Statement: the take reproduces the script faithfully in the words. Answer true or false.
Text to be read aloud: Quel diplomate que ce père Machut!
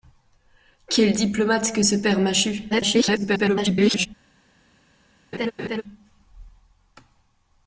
false